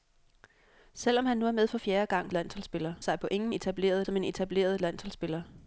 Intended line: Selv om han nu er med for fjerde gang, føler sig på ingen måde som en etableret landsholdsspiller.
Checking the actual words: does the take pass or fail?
fail